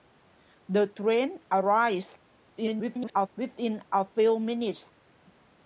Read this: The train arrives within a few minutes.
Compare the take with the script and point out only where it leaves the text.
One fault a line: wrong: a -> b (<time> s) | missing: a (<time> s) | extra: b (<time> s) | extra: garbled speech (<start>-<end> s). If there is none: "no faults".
extra: garbled speech (2.6-3.3 s)